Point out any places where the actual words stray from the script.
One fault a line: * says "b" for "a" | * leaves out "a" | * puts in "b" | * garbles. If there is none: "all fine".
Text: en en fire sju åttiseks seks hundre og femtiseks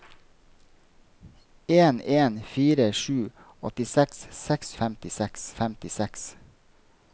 * says "femtiseks" for "hundre"